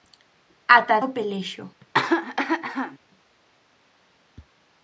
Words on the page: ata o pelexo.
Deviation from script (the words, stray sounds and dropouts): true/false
true